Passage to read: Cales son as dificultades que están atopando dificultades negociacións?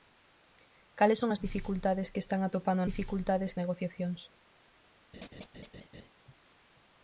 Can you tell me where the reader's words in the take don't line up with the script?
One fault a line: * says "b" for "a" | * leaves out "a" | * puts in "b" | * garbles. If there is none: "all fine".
all fine